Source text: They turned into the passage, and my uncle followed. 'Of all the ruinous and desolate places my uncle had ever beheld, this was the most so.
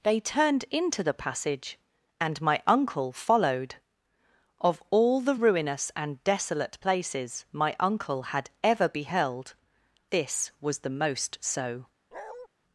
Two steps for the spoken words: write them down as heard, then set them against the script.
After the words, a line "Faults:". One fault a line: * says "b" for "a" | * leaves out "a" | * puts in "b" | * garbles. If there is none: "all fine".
They turned into the passage, and my uncle followed. 'Of all the ruinous and desolate places my uncle had ever beheld, this was the most so.
Faults:
all fine